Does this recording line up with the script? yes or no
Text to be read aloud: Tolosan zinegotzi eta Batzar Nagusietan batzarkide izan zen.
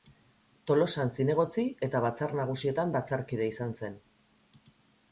yes